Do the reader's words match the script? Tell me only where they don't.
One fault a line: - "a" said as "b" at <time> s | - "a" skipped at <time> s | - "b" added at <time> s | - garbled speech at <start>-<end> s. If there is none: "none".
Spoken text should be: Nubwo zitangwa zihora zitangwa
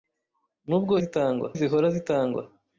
none